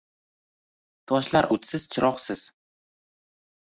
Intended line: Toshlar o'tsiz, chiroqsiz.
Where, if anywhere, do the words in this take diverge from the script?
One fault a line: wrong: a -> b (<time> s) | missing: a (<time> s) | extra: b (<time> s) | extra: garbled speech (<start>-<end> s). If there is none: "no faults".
no faults